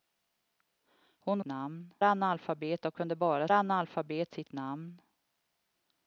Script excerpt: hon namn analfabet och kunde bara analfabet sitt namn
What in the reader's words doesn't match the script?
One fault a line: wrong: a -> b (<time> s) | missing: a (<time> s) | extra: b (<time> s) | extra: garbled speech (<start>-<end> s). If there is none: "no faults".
no faults